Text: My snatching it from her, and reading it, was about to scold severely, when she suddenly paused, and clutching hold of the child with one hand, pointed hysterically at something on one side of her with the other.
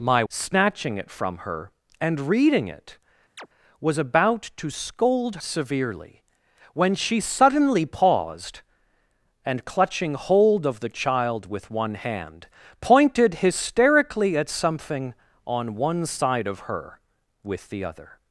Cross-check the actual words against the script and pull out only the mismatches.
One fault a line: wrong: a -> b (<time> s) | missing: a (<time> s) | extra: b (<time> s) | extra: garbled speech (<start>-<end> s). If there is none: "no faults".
no faults